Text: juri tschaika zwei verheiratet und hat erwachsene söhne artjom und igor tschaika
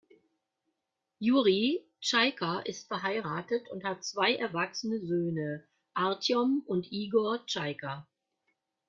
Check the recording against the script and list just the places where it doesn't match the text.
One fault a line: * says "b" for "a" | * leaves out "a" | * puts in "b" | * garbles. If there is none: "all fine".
* says "ist" for "zwei"
* puts in "zwei"